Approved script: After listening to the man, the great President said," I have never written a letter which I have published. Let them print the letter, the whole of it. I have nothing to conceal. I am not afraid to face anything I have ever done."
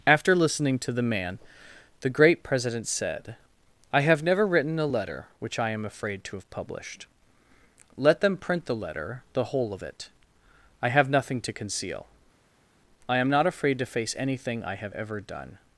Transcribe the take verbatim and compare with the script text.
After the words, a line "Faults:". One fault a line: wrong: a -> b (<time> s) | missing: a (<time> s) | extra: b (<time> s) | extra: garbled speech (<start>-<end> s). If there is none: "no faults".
After listening to the man, the great President said," I have never written a letter which I am afraid to have published. Let them print the letter, the whole of it. I have nothing to conceal. I am not afraid to face anything I have ever done."
Faults:
extra: am afraid to (5.7 s)